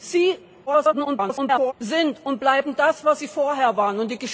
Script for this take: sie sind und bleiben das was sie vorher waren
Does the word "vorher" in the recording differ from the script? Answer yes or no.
no